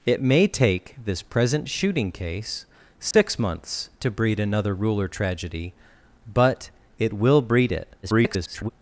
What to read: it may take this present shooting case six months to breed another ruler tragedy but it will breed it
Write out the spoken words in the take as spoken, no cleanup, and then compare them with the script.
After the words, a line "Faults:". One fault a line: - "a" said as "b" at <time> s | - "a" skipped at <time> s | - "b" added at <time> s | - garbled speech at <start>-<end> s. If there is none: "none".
it may take this present shooting case six months to breed another ruler tragedy but it will breed it [garbled]
Faults:
- garbled speech at 8.0-8.7 s